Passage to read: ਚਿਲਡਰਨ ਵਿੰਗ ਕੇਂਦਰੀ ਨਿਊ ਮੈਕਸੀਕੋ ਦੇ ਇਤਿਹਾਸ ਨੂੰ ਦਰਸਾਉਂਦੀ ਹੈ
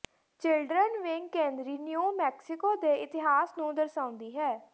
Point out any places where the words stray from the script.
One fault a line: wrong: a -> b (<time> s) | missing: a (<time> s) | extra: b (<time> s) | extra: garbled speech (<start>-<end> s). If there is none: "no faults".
no faults